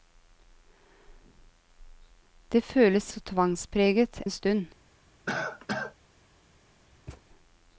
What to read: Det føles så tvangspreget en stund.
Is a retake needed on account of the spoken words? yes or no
no